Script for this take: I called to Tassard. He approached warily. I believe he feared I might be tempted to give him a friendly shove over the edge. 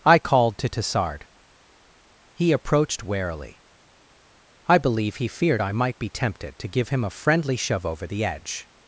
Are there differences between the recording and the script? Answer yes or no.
no